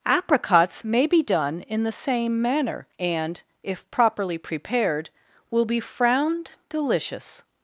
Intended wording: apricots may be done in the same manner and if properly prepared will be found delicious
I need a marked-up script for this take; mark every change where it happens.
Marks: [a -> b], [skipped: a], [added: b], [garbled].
apricots may be done in the same manner and if properly prepared will be [found -> frowned] delicious